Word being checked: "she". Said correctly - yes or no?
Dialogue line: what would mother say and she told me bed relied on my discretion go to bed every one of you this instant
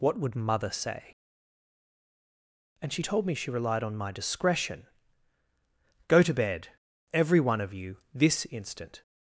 yes